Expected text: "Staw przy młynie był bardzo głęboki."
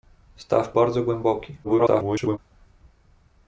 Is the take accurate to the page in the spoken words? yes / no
no